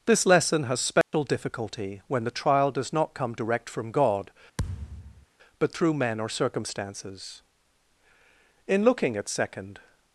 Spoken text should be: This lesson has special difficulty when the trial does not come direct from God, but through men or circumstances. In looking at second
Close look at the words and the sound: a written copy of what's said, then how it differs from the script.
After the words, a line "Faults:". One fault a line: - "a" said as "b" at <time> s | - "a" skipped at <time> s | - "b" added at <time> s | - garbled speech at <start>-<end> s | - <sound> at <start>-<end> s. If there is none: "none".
This lesson has special difficulty when the trial does not come direct from God, but through men or circumstances. In looking at second
Faults:
- dropout at 1.0-1.1 s
- thud at 4.6-5.3 s